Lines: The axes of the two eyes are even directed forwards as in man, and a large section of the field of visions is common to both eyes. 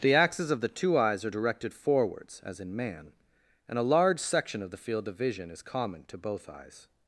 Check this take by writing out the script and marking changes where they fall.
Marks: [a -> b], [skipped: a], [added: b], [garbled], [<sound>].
The axes of the two eyes are [skipped: even] directed forwards as in man, and a large section of the field of [visions -> vision] is common to both eyes.